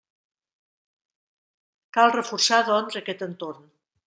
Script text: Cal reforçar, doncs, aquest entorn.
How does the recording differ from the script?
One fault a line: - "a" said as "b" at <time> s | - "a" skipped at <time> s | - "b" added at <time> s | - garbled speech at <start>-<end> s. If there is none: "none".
none